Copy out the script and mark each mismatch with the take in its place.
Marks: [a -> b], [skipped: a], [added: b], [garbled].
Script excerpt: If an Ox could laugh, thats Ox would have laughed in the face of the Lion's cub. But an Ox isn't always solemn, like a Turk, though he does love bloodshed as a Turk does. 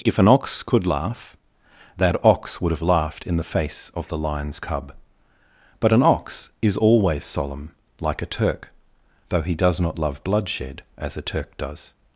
If an Ox could laugh, [thats -> that] Ox would have laughed in the face of the Lion's cub. But an Ox [isn't -> is] always solemn, like a Turk, though he does [added: not] love bloodshed as a Turk does.